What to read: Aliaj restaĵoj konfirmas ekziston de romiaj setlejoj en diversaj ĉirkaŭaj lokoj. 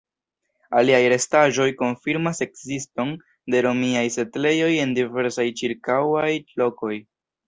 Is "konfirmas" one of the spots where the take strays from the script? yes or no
no